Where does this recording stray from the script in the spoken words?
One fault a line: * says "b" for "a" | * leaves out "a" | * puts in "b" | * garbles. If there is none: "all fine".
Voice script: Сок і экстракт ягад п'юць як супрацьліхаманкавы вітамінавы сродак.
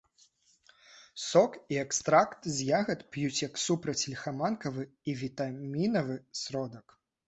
* puts in "з"
* puts in "і"